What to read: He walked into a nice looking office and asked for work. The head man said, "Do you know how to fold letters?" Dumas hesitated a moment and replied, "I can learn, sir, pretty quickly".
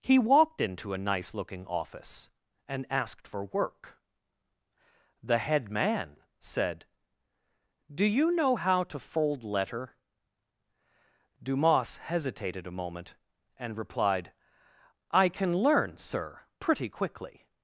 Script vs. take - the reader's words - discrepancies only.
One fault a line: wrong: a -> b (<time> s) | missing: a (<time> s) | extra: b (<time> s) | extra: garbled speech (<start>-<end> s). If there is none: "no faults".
wrong: letters -> letter (9.4 s)